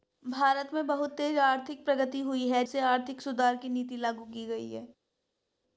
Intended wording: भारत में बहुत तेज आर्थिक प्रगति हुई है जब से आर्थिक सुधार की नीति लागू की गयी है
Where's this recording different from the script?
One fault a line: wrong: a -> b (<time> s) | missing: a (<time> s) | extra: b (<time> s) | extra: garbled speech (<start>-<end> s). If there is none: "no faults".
missing: जब (2.6 s)